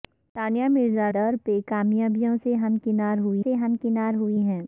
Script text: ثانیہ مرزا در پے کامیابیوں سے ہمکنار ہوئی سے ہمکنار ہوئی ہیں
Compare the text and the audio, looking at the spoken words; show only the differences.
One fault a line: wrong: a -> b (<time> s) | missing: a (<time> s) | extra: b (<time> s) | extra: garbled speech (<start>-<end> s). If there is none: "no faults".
no faults